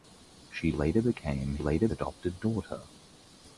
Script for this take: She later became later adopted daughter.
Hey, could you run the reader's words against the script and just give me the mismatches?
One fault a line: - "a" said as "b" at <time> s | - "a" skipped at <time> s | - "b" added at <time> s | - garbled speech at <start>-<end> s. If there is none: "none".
none